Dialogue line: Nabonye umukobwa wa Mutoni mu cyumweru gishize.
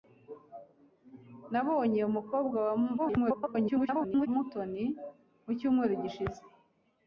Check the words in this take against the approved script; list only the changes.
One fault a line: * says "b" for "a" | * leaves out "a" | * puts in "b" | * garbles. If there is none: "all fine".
* garbles